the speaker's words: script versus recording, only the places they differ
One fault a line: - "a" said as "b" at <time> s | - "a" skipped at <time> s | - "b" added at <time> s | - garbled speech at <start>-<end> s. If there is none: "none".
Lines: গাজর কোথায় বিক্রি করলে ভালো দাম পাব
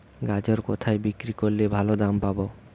none